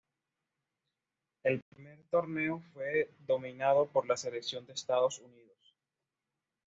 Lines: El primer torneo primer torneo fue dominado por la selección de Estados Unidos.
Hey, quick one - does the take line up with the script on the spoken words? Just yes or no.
no